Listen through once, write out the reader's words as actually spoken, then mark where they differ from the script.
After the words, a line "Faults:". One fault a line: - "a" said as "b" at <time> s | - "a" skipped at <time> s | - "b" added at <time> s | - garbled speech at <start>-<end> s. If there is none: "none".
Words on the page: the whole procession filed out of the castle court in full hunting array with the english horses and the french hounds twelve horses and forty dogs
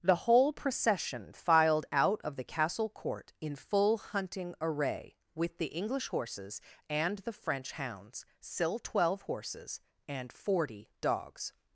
the whole procession filed out of the castle court in full hunting array with the english horses and the french hounds still twelve horses and forty dogs
Faults:
- "still" added at 8.4 s